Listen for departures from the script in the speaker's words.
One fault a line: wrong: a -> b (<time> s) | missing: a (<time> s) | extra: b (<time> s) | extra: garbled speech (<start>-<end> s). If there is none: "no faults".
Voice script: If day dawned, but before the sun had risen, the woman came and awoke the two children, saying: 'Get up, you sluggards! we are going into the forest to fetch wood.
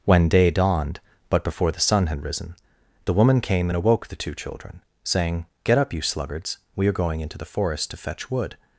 wrong: If -> When (0.1 s)